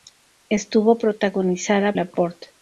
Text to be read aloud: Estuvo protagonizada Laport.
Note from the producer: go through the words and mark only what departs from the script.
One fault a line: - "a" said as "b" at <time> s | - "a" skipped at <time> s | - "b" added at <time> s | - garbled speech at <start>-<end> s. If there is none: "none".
none